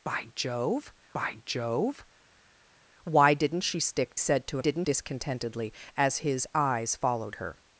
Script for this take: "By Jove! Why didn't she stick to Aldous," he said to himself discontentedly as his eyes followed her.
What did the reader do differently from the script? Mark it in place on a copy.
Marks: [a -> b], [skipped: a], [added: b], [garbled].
"By Jove! [added: by Jove] Why didn't she stick [skipped: to Aldous," he] said to [himself -> didn't] discontentedly as his eyes followed her.